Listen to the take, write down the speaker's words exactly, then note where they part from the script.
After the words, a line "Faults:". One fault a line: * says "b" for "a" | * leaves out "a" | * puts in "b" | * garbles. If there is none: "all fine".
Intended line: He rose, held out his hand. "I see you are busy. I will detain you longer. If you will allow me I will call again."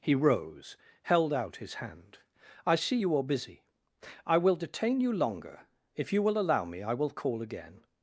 He rose, held out his hand. "I see you are busy. I will detain you longer. If you will allow me I will call again."
Faults:
all fine